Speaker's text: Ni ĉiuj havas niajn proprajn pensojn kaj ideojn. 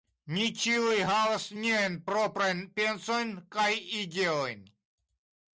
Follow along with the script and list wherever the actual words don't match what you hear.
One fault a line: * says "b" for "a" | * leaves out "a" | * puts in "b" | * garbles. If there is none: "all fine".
all fine